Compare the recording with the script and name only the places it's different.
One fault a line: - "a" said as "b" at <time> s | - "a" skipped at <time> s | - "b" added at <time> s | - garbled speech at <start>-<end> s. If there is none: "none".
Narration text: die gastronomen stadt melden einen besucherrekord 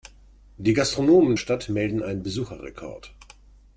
none